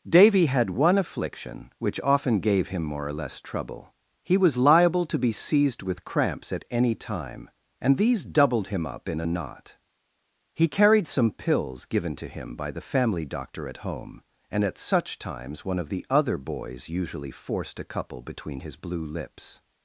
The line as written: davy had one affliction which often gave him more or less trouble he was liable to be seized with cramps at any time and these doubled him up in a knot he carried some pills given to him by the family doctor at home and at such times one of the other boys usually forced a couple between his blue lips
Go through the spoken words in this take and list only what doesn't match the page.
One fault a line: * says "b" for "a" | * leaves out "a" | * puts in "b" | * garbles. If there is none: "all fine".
all fine